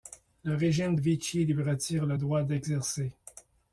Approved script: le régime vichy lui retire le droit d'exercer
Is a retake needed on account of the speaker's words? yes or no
no